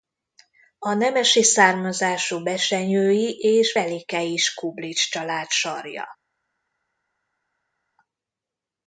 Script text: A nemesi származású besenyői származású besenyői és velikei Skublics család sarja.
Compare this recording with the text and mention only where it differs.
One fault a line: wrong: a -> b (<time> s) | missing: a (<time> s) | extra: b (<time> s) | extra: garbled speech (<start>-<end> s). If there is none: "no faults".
missing: származású besenyői (3.4 s)